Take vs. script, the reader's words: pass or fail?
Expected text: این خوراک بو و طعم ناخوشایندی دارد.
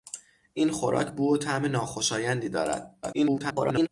fail